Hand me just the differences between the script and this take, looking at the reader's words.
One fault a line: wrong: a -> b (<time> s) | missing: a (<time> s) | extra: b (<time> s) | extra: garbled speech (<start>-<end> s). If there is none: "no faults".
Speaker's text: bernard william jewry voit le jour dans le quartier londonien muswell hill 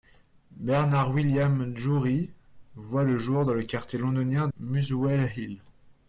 no faults